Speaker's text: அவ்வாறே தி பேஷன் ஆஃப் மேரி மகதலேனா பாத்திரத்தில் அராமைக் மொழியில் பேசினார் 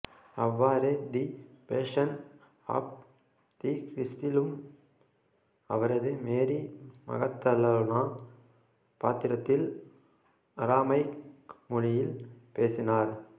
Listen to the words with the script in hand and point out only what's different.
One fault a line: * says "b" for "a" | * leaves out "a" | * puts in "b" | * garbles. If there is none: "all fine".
* puts in "தி கிறிஸ்டிலும் அவரது"